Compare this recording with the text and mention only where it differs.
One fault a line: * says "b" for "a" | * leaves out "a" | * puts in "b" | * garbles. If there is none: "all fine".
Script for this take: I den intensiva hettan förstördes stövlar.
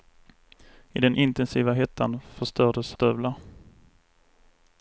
all fine